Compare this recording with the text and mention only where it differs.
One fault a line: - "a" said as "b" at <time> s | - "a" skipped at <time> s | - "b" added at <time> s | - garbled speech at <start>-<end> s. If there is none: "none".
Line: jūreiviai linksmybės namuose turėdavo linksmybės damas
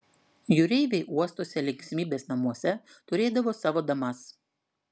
- "uostuose" added at 1.2 s
- "linksmybės" said as "savo" at 3.6 s